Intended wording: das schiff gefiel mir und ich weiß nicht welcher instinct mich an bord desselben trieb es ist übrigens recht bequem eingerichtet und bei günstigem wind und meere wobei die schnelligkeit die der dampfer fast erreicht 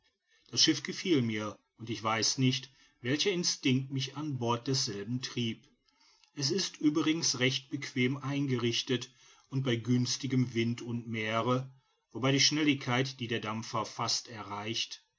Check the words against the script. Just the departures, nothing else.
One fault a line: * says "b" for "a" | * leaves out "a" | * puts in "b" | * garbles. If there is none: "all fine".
all fine